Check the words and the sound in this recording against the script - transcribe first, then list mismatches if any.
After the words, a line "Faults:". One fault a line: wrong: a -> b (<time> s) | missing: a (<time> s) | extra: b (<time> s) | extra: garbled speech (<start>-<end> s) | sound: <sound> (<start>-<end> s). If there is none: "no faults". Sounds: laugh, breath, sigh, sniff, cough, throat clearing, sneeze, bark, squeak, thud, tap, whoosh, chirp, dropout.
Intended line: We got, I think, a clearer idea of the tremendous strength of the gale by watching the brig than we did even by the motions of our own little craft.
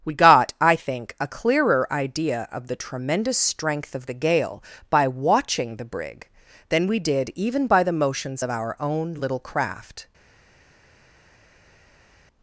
We got, I think, a clearer idea of the tremendous strength of the gale by watching the brig than we did even by the motions of our own little craft.
Faults:
no faults